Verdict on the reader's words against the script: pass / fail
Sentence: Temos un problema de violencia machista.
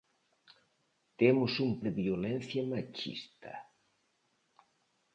fail